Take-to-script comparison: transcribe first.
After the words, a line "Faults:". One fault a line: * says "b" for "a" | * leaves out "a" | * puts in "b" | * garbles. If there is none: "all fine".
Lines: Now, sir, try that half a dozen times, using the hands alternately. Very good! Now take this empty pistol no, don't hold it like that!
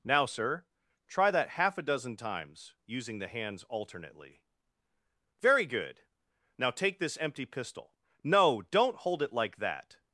Now, sir, try that half a dozen times, using the hands alternately. Very good! Now take this empty pistol no, don't hold it like that!
Faults:
all fine